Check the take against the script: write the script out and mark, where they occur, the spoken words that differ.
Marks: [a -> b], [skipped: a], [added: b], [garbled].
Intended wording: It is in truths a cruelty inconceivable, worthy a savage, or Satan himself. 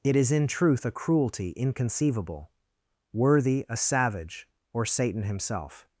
It is in [truths -> truth] a cruelty inconceivable, worthy a savage, or Satan himself.